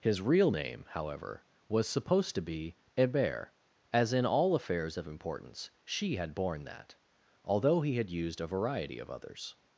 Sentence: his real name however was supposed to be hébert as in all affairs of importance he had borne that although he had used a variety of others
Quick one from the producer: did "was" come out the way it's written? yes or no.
yes